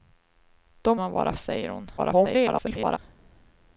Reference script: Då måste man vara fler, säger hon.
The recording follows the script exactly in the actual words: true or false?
false